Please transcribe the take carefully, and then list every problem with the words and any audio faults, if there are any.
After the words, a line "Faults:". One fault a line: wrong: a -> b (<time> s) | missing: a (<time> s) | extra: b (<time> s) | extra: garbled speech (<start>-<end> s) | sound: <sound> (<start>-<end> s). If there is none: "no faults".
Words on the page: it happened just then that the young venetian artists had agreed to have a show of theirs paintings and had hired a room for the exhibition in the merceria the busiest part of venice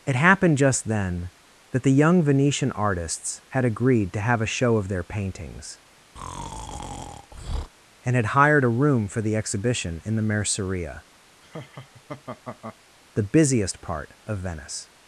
it happened just then that the young venetian artists had agreed to have a show of their paintings and had hired a room for the exhibition in the merceria the busiest part of venice
Faults:
wrong: theirs -> their (4.9 s)
sound: breath (6.2-7.7 s)
sound: laugh (11.4-12.8 s)